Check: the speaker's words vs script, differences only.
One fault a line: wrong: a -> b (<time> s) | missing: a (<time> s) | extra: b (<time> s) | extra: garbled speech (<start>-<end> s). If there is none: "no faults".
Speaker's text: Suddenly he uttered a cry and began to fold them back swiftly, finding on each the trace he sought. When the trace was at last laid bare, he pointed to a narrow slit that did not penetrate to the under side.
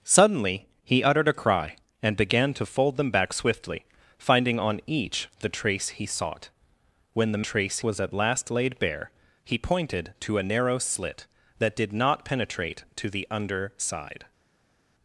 no faults